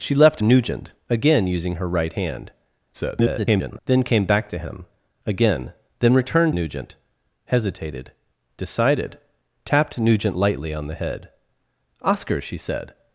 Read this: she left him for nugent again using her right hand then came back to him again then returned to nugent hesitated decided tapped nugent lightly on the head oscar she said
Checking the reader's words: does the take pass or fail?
fail